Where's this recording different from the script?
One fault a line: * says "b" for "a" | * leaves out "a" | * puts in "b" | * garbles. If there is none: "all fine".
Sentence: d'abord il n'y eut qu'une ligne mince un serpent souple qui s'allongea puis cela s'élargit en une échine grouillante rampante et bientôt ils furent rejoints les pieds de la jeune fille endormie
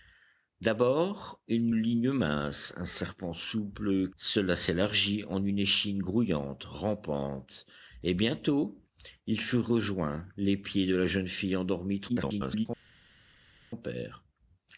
* leaves out "eut qu'une"
* leaves out "qui s'allongea puis"
* garbles